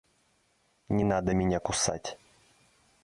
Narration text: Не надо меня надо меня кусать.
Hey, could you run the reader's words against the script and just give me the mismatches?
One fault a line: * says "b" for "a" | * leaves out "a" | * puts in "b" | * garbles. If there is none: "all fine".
* leaves out "надо меня"